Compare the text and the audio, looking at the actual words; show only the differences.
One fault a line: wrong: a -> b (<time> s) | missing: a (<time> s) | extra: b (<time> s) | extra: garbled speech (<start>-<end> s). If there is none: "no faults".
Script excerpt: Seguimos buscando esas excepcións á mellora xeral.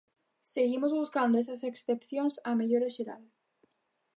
no faults